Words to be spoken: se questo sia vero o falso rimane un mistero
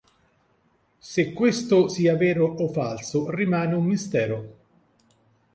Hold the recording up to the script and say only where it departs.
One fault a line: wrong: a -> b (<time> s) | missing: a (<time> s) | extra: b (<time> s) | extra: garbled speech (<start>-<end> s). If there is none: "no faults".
no faults